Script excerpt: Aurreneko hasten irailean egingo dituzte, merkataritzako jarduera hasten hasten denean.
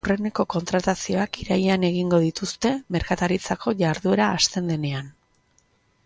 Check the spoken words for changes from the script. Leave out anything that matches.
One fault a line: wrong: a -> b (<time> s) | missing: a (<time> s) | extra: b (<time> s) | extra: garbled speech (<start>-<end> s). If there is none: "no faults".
wrong: hasten -> kontratazioak (0.5 s)
missing: hasten (4.7 s)